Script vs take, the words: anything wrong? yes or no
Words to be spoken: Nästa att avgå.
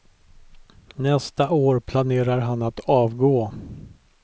yes